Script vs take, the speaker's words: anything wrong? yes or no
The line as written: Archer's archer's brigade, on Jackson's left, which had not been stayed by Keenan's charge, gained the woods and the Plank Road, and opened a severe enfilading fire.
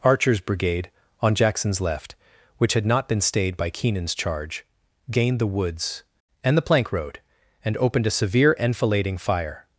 yes